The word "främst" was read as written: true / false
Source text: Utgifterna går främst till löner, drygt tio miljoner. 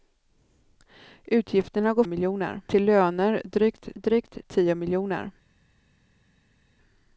false